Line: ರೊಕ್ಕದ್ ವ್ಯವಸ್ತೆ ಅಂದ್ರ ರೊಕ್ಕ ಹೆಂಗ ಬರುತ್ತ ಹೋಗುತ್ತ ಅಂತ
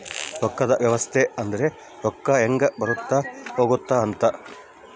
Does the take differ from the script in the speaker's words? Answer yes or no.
no